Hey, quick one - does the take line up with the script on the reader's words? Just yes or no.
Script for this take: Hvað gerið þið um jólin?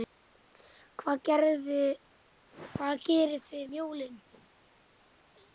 yes